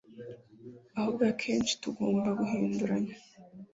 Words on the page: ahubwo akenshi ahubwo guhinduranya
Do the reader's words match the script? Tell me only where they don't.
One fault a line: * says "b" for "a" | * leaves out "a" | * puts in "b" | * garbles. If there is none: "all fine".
* says "tugomba" for "ahubwo"